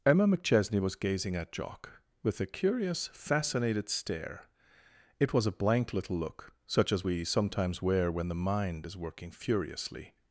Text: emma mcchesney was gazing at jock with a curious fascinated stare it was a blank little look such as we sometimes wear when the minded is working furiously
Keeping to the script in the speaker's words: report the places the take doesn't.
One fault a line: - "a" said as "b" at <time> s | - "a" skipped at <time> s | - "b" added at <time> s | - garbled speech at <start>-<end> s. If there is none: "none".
- "minded" said as "mind" at 8.3 s